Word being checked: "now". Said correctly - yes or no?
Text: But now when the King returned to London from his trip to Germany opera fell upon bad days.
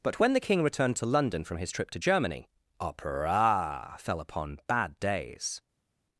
no